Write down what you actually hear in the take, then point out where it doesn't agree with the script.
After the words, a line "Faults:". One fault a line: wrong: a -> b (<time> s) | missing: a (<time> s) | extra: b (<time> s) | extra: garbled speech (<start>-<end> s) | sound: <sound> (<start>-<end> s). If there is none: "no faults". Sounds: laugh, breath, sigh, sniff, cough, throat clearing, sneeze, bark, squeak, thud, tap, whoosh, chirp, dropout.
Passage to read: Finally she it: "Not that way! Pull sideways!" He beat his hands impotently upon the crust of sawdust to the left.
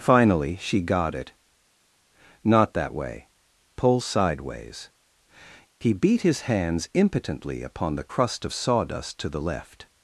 Finally she got it: "Not that way! Pull sideways!" He beat his hands impotently upon the crust of sawdust to the left.
Faults:
extra: got (0.8 s)